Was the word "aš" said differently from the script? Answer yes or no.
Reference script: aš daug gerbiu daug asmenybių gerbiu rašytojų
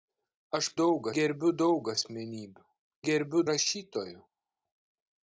no